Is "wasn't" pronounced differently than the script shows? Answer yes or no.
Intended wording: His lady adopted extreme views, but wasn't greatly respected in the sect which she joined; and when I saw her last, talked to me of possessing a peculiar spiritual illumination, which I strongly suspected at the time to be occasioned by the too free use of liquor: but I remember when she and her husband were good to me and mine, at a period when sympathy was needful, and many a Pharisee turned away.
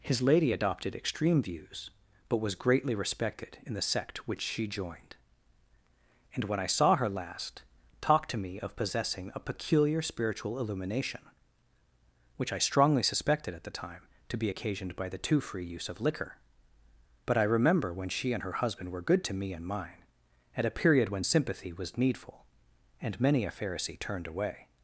yes